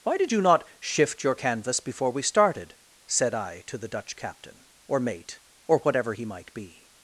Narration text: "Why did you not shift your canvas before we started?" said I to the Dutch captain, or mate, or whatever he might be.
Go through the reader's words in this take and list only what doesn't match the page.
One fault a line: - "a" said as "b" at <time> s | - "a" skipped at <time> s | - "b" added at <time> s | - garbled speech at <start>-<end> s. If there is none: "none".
none